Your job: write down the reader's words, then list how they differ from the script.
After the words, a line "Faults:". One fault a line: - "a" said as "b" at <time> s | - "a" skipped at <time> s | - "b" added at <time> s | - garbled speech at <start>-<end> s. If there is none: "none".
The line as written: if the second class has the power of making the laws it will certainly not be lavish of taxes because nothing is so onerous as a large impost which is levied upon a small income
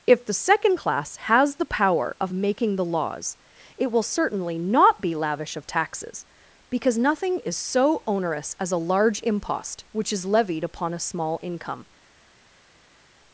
if the second class has the power of making the laws it will certainly not be lavish of taxes because nothing is so onerous as a large impost which is levied upon a small income
Faults:
none